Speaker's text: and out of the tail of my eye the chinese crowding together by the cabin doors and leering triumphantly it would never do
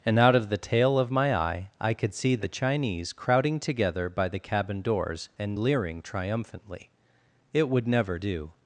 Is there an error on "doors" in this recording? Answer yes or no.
no